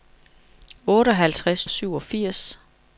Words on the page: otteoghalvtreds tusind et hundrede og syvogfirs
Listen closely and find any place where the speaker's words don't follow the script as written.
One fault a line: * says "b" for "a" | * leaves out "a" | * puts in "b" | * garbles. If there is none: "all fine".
* leaves out "tusind et hundrede"